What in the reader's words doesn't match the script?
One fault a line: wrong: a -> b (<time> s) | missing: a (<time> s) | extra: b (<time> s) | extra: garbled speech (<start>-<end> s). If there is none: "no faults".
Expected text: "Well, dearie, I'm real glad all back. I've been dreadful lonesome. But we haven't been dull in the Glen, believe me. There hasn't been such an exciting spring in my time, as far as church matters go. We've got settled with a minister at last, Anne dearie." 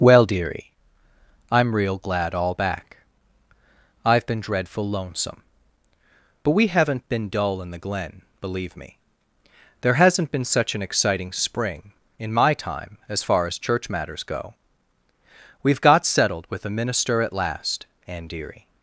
no faults